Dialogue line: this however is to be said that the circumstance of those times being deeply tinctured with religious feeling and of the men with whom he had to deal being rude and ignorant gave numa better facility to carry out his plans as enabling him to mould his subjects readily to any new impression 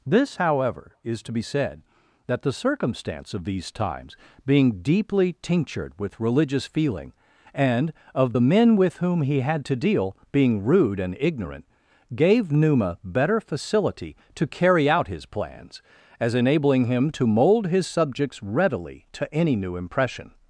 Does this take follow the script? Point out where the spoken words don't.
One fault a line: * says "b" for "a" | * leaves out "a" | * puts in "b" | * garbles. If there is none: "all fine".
* says "these" for "those"